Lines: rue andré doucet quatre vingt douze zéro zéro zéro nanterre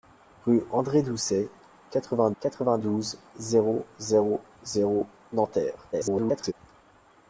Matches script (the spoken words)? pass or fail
fail